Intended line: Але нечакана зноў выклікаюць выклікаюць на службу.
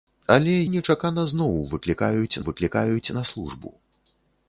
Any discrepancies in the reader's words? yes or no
no